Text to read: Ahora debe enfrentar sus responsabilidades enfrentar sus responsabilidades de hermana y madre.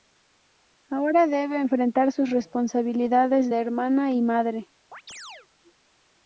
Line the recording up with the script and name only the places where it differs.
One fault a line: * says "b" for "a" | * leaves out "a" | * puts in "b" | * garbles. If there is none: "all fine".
* leaves out "enfrentar sus responsabilidades"